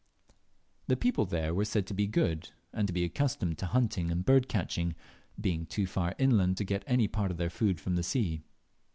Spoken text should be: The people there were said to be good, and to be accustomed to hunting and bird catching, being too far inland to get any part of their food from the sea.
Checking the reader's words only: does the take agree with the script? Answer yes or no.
yes